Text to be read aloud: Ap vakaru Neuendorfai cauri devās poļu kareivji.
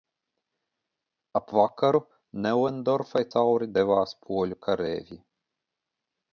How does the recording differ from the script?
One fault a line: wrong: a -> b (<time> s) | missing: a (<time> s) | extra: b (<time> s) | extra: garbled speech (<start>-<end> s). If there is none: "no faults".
no faults